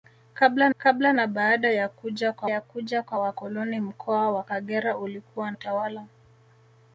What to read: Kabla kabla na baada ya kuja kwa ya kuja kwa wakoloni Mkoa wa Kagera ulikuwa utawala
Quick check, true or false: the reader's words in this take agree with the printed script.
true